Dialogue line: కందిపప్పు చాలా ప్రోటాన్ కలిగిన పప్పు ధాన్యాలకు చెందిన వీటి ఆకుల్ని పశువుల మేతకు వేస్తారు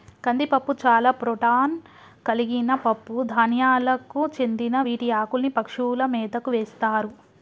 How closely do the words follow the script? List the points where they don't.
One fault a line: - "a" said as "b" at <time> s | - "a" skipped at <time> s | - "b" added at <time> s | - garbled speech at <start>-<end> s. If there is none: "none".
none